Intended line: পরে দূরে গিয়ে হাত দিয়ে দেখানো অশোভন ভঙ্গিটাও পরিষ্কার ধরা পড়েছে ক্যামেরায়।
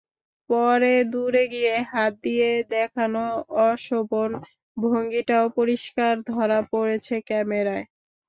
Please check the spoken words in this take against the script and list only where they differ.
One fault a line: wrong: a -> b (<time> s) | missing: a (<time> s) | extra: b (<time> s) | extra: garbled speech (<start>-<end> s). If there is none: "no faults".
no faults